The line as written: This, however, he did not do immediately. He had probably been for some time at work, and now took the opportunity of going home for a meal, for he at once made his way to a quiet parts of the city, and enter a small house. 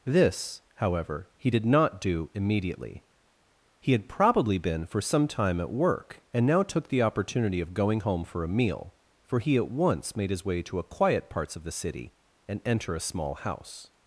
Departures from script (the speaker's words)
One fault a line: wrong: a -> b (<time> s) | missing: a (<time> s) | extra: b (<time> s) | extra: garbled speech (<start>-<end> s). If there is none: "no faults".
no faults